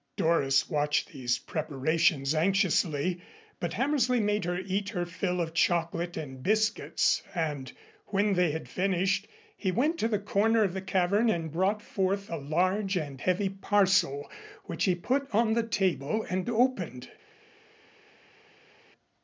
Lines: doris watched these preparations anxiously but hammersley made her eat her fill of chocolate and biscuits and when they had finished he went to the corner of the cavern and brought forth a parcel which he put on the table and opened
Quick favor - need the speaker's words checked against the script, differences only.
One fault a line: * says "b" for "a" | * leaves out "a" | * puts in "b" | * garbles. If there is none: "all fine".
* puts in "large and heavy"